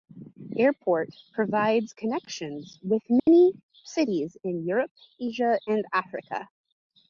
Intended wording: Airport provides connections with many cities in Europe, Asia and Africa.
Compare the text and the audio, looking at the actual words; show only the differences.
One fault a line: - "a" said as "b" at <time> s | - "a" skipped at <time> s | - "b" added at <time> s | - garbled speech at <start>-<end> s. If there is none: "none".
none